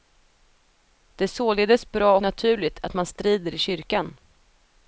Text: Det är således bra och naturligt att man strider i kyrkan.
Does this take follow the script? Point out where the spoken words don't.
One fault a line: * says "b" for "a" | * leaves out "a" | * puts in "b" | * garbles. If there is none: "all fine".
* leaves out "och"